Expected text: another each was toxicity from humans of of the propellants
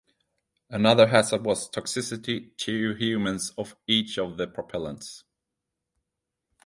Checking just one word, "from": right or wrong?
wrong